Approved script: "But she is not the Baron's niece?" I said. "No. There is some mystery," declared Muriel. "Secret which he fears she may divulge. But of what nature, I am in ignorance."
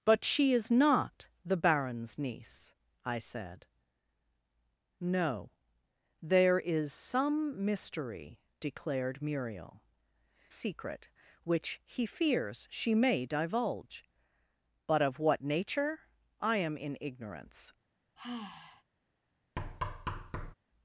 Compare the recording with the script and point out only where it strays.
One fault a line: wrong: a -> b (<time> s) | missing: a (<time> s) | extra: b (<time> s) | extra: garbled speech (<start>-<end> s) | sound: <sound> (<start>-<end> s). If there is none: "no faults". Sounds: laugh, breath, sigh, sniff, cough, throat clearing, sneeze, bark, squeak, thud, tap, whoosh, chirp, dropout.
sound: sigh (18.2-18.8 s)
sound: thud (19.6-20.5 s)